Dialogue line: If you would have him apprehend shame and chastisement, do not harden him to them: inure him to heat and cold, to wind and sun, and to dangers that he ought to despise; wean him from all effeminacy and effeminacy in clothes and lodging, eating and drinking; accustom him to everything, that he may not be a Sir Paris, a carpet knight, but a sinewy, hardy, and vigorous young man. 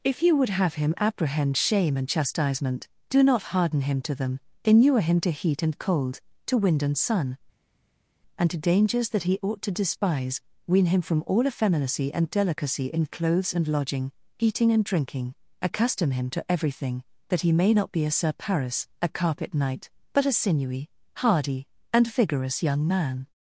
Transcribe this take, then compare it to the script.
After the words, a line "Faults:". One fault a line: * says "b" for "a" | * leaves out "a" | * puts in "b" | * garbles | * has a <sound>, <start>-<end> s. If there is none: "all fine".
If you would have him apprehend shame and chastisement, do not harden him to them: inure him to heat and cold, to wind and sun, and to dangers that he ought to despise; wean him from all effeminacy and delicacy in clothes and lodging, eating and drinking; accustom him to everything, that he may not be a Sir Paris, a carpet knight, but a sinewy, hardy, and vigorous young man.
Faults:
* says "delicacy" for "effeminacy"